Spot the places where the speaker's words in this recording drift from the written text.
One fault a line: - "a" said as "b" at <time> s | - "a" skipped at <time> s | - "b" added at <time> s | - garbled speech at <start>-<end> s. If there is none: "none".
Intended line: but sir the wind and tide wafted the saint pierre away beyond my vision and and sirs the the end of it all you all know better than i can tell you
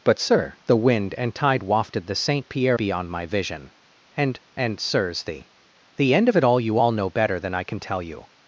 - "away" skipped at 2.8 s